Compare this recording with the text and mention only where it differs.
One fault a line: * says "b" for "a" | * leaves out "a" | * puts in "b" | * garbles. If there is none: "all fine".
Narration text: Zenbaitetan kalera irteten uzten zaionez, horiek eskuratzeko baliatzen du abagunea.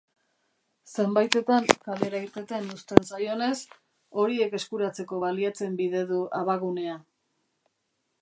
* puts in "bide"